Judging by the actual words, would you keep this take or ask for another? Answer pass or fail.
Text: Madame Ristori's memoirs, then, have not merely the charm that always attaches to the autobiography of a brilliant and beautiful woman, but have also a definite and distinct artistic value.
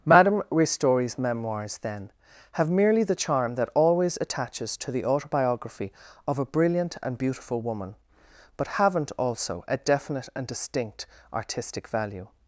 fail